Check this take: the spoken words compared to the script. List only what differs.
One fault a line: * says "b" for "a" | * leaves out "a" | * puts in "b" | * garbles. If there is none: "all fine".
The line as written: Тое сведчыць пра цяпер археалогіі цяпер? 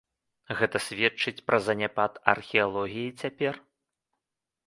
* says "Гэта" for "Тое"
* says "заняпад" for "цяпер"